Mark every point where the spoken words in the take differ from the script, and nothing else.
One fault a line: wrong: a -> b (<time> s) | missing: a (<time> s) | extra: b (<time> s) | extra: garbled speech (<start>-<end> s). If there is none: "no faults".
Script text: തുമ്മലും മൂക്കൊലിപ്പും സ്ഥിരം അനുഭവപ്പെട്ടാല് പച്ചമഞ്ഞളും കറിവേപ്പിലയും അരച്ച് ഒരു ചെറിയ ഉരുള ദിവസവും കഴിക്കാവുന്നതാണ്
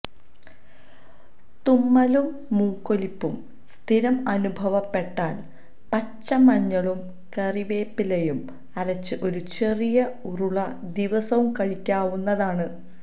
no faults